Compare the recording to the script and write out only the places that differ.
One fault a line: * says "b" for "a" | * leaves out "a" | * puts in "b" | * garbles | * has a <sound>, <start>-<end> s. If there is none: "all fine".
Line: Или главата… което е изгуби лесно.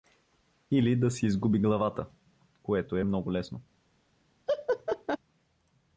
* puts in "да си изгуби"
* says "много" for "изгуби"
* has a laugh, 4.5-5.2 s